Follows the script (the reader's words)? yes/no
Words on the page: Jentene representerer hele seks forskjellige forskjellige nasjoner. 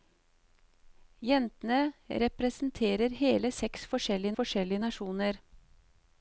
yes